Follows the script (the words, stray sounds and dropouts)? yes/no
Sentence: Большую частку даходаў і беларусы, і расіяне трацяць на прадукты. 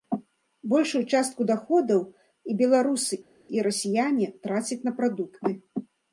yes